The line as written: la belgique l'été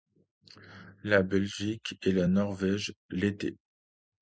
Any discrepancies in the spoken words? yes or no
yes